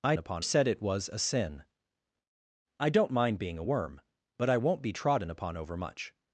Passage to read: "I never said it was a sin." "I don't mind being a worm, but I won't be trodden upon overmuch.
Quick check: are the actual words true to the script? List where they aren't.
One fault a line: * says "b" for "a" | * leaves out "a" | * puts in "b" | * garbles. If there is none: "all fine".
* says "upon" for "never"